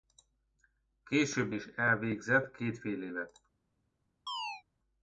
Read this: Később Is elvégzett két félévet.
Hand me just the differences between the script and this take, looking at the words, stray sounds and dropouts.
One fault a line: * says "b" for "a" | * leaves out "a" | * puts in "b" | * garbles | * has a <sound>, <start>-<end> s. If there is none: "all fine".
* has a chirp, 4.3-4.6 s